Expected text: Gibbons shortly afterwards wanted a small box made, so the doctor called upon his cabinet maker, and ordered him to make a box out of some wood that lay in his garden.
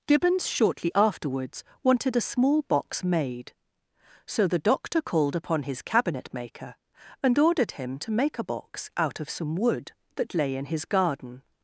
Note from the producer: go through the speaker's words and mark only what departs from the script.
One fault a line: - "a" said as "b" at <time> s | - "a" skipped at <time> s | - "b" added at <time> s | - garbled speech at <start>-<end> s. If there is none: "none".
none